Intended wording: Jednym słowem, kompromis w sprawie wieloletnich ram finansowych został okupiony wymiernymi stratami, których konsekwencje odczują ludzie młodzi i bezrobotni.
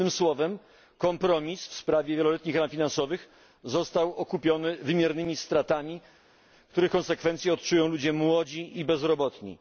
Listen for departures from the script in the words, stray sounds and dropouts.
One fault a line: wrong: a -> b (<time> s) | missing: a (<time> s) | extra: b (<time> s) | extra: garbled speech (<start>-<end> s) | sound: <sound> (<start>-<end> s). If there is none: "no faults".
no faults